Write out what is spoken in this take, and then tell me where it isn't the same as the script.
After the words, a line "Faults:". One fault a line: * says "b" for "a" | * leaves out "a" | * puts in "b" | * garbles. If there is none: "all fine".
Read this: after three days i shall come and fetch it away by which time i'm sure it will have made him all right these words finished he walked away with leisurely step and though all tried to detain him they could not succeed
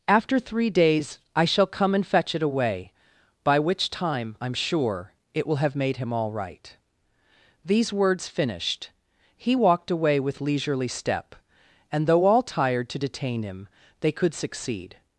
after three days i shall come and fetch it away by which time i'm sure it will have made him all right these words finished he walked away with leisurely step and though all tired to detain him they could succeed
Faults:
* says "tired" for "tried"
* leaves out "not"